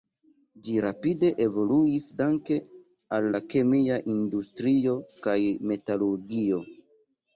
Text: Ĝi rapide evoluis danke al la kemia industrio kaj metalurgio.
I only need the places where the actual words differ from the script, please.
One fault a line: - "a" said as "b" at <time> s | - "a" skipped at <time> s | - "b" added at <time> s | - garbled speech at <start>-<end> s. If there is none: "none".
none